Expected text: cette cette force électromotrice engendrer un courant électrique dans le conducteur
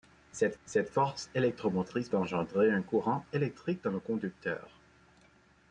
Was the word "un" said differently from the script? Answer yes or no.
no